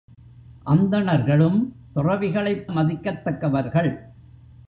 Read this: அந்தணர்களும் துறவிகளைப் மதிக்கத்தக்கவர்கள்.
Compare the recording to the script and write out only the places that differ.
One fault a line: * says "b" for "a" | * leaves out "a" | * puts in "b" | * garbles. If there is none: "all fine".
all fine